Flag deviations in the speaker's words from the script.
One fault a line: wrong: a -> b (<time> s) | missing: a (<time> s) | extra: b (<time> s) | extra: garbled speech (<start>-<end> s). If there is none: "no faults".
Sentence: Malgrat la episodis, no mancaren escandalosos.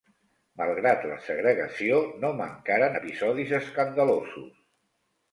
wrong: episodis -> segregació (1.2 s)
extra: episodis (2.9 s)